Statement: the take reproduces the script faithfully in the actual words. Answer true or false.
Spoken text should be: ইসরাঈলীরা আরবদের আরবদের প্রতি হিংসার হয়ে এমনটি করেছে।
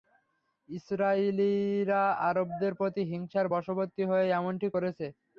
false